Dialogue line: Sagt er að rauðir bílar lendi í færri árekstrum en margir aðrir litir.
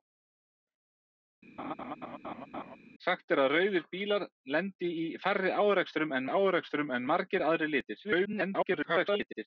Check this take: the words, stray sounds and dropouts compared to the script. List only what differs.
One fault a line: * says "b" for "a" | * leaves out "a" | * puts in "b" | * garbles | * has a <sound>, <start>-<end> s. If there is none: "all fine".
* has a laugh, 1.6-2.8 s
* puts in "árekstrum en"
* garbles